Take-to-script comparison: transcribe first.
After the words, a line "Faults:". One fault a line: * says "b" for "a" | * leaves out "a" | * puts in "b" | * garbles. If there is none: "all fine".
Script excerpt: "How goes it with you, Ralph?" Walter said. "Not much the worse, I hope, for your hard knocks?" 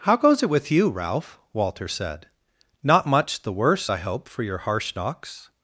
"How goes it with you, Ralph?" Walter said. "Not much the worse, I hope, for your harsh knocks?"
Faults:
* says "harsh" for "hard"